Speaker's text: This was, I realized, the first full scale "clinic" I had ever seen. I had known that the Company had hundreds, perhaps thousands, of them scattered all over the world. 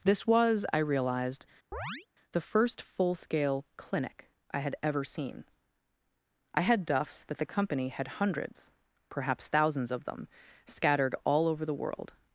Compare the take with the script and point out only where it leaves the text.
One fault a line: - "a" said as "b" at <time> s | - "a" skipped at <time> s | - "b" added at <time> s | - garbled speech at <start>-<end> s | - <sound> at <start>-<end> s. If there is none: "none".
- chirp at 1.7-2.1 s
- "known" said as "duffs" at 6.9 s